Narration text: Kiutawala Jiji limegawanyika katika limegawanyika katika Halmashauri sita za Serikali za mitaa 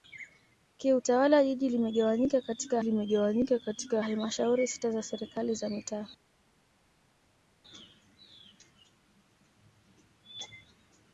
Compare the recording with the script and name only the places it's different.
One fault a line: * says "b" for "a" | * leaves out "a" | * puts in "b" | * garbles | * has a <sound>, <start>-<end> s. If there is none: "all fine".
all fine